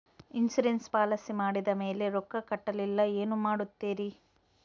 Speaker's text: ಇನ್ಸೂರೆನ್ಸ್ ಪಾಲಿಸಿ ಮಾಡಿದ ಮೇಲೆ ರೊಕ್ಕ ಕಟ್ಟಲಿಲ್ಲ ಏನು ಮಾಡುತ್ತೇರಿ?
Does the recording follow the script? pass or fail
pass